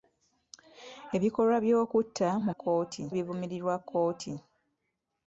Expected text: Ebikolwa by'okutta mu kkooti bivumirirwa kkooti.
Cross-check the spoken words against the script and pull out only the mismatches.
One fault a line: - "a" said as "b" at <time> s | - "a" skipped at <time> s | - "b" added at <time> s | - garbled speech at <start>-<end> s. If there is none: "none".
none